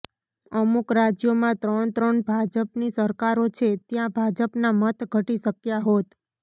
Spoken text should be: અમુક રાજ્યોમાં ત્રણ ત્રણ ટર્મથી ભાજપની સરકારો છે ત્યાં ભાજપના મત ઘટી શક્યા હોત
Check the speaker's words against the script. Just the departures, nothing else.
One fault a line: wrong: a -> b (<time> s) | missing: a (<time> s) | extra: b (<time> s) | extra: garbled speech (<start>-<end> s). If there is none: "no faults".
missing: ટર્મથી (2.2 s)